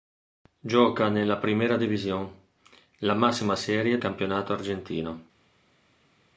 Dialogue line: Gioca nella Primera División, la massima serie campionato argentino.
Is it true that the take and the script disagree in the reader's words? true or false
false